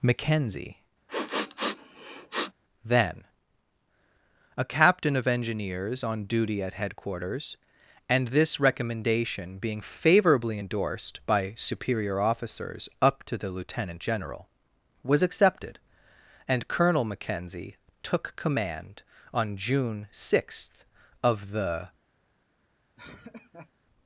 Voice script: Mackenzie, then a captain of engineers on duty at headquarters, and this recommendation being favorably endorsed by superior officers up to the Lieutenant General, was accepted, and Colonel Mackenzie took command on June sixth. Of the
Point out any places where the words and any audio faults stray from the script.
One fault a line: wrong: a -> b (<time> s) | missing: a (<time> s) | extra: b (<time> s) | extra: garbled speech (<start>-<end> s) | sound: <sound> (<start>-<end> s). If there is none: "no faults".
sound: sniff (1.1-2.5 s)
sound: laugh (23.0-23.7 s)